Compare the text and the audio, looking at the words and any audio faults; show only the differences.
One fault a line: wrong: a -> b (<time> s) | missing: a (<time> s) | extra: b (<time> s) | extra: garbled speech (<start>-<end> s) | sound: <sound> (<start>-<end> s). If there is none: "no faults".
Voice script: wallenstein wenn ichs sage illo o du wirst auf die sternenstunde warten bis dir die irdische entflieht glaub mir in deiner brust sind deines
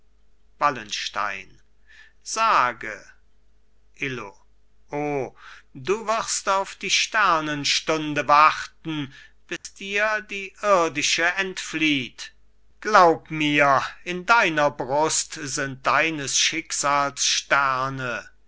missing: wenn ichs (1.6 s)
sound: dropout (9.6-9.6 s)